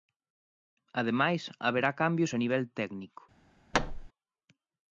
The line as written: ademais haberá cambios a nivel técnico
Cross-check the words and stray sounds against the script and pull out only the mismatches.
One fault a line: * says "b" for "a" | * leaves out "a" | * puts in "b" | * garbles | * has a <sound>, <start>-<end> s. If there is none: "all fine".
* has a thud, 3.7-4.1 s